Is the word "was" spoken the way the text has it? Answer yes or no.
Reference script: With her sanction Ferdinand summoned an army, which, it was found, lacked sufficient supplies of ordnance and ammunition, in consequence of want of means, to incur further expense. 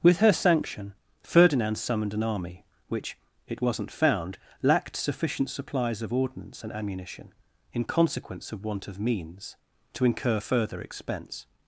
no